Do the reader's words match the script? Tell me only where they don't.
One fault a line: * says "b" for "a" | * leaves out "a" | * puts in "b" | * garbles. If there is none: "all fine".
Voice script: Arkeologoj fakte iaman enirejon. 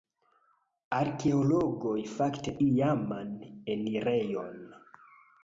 all fine